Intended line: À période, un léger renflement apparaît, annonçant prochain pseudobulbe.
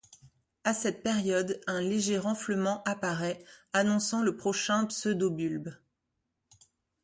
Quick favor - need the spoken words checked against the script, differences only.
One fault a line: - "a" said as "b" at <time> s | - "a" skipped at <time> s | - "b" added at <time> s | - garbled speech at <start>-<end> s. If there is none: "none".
- "cette" added at 0.7 s
- "le" added at 4.2 s